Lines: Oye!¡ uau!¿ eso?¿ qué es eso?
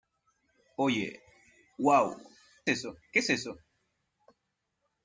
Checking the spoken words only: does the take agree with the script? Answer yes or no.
yes